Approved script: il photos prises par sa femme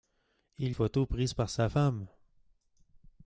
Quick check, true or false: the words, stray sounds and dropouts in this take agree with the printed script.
true